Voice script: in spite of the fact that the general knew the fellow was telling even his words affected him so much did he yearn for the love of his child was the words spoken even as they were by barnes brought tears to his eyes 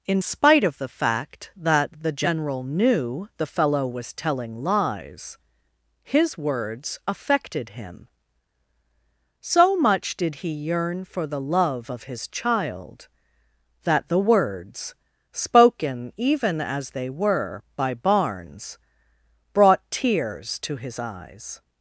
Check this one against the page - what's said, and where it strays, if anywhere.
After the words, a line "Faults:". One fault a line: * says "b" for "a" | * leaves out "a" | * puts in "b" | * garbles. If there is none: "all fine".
in spite of the fact that the general knew the fellow was telling lies his words affected him so much did he yearn for the love of his child that the words spoken even as they were by barnes brought tears to his eyes
Faults:
* says "lies" for "even"
* says "that" for "was"